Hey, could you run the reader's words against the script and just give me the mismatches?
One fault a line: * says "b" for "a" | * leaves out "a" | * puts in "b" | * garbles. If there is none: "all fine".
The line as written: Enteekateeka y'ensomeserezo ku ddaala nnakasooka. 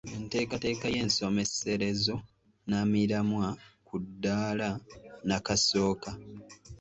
* puts in "nnamiramwa"